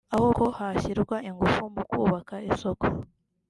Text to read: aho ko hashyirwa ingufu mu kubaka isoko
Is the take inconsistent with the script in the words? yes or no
no